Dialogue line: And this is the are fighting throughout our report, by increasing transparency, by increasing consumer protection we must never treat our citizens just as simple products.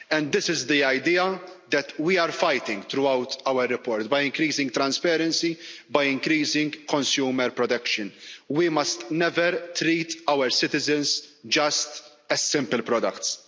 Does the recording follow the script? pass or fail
fail